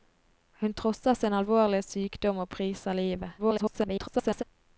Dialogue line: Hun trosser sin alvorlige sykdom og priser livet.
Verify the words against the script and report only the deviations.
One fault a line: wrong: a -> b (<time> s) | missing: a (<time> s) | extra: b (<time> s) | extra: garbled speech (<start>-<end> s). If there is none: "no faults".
extra: garbled speech (3.4-4.4 s)